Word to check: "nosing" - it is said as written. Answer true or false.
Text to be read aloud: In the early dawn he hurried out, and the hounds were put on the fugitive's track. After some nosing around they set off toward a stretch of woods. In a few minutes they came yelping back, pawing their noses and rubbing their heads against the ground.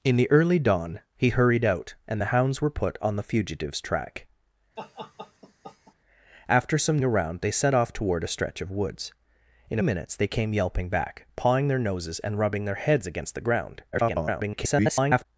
false